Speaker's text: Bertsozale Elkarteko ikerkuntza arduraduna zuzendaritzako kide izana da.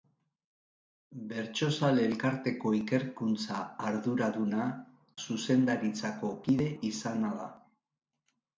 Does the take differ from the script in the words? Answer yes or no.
no